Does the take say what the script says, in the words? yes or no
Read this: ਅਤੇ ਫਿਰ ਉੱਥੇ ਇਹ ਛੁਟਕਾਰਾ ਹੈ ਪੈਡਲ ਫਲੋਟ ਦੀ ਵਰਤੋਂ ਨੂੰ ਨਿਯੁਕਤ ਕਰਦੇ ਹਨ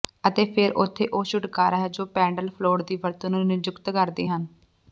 no